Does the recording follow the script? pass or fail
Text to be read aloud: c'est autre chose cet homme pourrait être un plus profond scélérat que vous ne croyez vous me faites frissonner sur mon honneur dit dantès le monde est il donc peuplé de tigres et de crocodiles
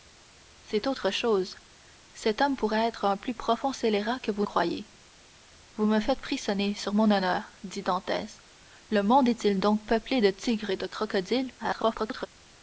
fail